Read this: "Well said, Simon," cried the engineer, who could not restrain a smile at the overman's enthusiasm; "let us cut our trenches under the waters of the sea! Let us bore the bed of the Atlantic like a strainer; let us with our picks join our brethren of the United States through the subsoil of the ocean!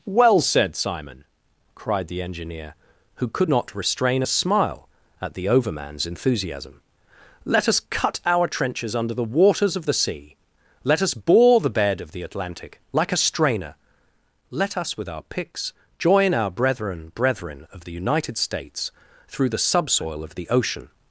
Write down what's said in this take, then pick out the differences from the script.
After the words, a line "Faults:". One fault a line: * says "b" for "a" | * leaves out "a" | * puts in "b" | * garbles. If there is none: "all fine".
"Well said, Simon," cried the engineer, who could not restrain a smile at the overman's enthusiasm; "let us cut our trenches under the waters of the sea! Let us bore the bed of the Atlantic like a strainer; let us with our picks join our brethren brethren of the United States through the subsoil of the ocean!
Faults:
* puts in "brethren"